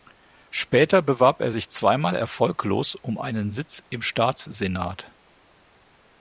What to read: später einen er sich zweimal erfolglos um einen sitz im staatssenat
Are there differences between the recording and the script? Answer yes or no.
yes